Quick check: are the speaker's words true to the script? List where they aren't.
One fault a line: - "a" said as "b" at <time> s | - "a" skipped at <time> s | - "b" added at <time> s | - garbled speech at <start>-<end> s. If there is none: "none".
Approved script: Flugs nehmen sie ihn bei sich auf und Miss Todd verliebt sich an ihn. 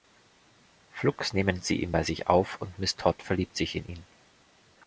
- "an" said as "in" at 3.8 s